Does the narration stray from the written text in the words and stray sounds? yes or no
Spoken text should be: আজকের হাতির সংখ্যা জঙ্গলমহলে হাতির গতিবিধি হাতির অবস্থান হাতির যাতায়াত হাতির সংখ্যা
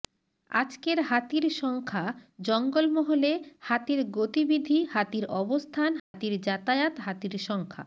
yes